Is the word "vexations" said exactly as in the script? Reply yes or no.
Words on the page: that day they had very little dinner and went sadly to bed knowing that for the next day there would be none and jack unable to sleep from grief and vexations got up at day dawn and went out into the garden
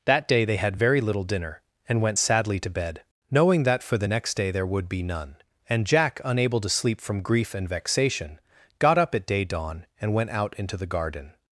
no